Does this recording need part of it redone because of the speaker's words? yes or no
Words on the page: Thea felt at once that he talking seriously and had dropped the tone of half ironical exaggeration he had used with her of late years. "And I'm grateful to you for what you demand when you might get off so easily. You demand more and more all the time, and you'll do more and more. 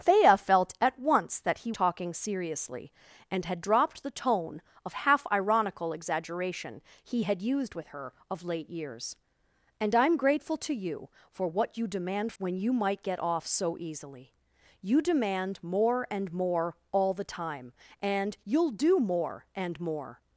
no